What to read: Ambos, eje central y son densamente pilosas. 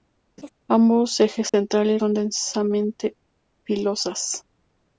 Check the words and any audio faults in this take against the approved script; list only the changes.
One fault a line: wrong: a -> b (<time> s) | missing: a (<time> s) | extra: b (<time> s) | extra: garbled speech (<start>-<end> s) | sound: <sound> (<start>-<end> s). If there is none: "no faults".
sound: laugh (0.4-0.5 s)
sound: dropout (1.5-1.5 s)